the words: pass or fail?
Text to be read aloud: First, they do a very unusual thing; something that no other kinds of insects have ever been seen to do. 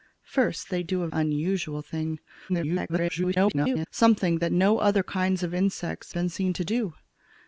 fail